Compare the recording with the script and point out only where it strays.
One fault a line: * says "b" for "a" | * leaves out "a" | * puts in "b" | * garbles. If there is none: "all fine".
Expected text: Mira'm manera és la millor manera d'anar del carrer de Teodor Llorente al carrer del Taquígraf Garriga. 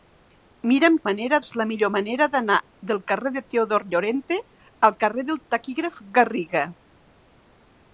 all fine